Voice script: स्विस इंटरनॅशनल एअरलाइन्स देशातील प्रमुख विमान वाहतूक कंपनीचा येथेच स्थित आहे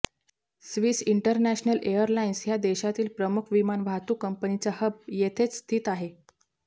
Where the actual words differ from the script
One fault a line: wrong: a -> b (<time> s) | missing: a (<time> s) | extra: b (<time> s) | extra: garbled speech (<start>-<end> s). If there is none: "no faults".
extra: ह्या (2.5 s)
extra: हब (4.8 s)